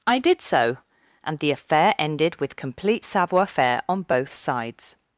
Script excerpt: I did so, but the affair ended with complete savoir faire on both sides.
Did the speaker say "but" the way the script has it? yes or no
no